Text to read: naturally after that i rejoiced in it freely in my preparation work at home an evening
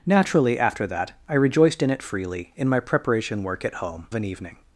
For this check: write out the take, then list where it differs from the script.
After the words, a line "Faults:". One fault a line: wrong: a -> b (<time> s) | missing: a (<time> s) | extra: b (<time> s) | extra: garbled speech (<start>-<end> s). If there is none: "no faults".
naturally after that i rejoiced in it freely in my preparation work at home an evening
Faults:
no faults